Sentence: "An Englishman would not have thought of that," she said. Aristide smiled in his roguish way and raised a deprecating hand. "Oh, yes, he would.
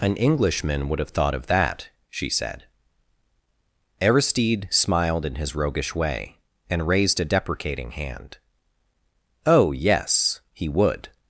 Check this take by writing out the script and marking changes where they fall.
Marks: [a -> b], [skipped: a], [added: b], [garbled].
"An Englishman would [skipped: not] have thought of that," she said. Aristide smiled in his roguish way and raised a deprecating hand. "Oh, yes, he would.